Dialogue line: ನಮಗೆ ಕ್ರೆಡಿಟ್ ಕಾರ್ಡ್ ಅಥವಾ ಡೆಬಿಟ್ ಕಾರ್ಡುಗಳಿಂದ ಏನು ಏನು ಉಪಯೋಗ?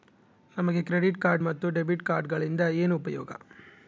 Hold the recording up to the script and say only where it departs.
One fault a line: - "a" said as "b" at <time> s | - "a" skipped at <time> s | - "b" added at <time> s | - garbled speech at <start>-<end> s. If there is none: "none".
- "ಅಥವಾ" said as "ಮತ್ತು" at 1.4 s
- "ಏನು" skipped at 3.0 s